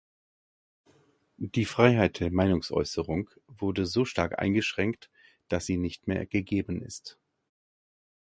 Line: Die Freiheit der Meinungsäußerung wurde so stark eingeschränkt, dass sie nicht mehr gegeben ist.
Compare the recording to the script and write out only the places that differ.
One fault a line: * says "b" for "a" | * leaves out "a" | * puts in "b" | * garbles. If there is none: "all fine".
all fine